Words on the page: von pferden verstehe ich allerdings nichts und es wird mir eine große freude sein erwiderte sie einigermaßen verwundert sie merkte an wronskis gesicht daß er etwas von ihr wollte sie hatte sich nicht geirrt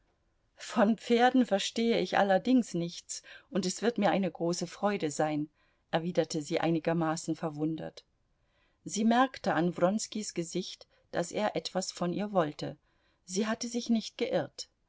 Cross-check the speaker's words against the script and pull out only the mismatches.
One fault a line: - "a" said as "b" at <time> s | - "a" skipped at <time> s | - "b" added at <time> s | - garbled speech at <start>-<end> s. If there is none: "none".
none